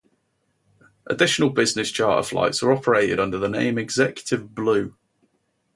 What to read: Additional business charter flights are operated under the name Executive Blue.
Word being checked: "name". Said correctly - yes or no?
yes